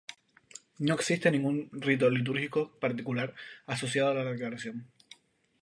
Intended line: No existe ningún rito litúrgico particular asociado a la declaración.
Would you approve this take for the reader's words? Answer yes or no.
yes